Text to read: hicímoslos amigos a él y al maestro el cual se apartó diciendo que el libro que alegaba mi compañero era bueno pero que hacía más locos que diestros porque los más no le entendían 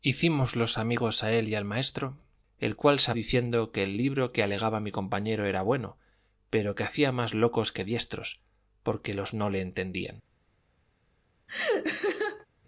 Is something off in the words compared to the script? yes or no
yes